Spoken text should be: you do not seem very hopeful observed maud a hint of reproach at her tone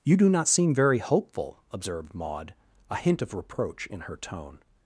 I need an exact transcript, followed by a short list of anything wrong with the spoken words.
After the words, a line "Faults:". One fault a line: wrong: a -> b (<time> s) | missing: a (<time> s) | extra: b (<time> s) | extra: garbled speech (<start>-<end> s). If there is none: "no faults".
you do not seem very hopeful observed maud a hint of reproach in her tone
Faults:
wrong: at -> in (3.9 s)